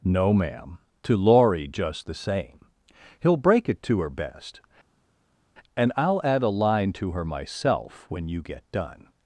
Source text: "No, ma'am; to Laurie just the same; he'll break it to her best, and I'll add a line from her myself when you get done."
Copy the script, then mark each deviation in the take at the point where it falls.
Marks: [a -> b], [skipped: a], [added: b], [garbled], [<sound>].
"No, ma'am; to Laurie just the same; he'll break it to her best, and I'll add a line [from -> to] her myself when you get done."